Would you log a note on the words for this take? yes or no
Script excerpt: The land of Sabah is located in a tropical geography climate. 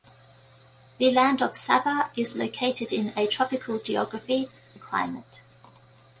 no